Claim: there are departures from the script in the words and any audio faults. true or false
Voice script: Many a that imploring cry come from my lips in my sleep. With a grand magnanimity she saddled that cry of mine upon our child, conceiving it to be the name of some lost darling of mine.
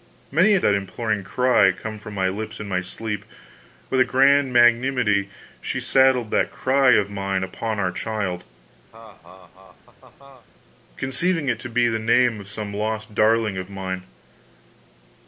true